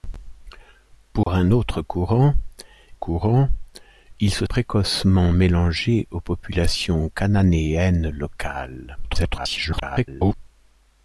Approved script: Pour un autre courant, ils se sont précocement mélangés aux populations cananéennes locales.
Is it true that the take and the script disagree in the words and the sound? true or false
true